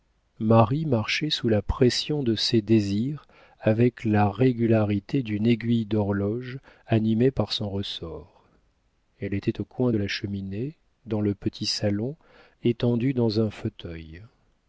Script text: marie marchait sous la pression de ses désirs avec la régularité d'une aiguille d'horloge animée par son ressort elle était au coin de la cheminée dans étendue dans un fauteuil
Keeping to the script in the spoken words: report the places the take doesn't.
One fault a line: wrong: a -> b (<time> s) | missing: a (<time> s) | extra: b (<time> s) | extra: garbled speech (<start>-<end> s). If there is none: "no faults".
extra: le petit salon (11.2 s)